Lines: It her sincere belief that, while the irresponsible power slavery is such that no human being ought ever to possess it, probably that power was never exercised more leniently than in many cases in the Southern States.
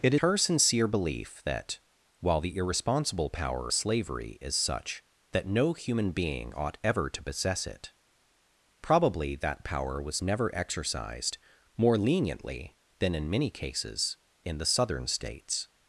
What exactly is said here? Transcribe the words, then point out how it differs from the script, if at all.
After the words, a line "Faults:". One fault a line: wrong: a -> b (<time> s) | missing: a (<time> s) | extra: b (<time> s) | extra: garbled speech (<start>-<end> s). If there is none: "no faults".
It her sincere belief that, while the irresponsible power slavery is such that no human being ought ever to possess it, probably that power was never exercised more leniently than in many cases in the Southern States.
Faults:
no faults